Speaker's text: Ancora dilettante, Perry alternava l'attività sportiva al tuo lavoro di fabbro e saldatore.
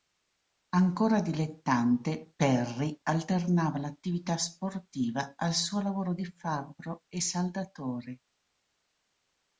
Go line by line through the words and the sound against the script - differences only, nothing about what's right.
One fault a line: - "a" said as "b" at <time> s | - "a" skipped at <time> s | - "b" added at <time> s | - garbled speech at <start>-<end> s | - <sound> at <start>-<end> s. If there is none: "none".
- "tuo" said as "suo" at 5.5 s